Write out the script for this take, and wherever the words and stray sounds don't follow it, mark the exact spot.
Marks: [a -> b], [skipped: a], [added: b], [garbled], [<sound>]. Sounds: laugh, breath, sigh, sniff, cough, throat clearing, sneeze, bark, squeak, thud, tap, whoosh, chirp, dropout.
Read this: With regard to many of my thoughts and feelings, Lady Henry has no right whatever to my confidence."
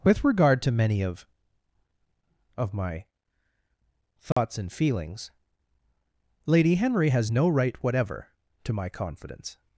With regard to many of [added: of] my thoughts [dropout] and feelings, Lady Henry has no right whatever to my confidence."